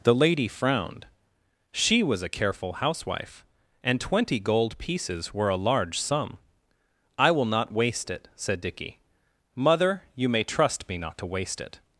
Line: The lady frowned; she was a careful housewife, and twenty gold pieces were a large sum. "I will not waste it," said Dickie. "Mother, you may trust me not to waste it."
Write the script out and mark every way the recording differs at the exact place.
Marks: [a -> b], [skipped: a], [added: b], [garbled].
The lady frowned; she was a careful housewife, and twenty gold pieces were a large sum. "I will not waste it," said Dickie. "Mother, you may trust me not to waste it."